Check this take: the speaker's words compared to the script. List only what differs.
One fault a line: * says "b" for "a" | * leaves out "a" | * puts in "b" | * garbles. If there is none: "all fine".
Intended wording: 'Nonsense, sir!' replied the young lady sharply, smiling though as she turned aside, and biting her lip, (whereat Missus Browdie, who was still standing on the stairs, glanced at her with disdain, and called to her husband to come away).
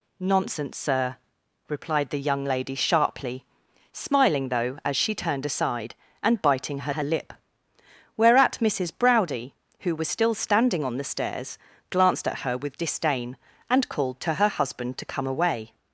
* puts in "her"